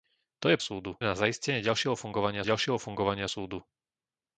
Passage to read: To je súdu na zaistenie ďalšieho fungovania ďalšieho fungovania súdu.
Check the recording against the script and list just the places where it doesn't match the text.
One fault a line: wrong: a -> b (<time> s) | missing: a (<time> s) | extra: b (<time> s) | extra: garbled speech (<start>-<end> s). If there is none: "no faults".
no faults